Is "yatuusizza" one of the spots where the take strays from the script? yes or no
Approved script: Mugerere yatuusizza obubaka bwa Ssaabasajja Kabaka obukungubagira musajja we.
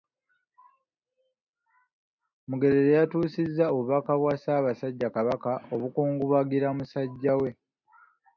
no